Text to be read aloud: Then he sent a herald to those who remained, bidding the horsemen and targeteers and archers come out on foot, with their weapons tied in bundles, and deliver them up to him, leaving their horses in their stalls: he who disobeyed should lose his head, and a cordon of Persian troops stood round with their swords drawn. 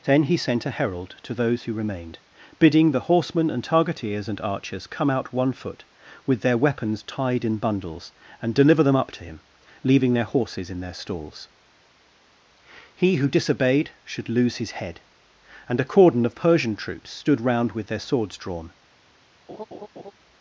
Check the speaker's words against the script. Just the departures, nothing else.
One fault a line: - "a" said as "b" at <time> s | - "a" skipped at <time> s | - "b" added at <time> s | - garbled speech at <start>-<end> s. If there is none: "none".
- "on" said as "one" at 5.3 s